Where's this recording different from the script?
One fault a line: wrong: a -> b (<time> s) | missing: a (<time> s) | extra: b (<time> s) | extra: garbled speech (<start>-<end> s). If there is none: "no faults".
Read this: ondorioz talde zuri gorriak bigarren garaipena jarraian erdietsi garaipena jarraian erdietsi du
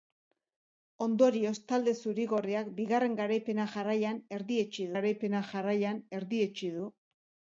no faults